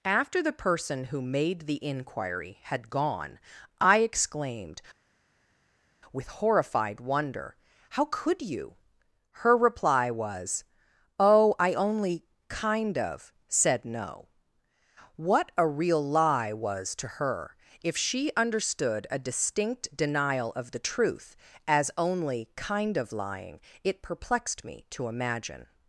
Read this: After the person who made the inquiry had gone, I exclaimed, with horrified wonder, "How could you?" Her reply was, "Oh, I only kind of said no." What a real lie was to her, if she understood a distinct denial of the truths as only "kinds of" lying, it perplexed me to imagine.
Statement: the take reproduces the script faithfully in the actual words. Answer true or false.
false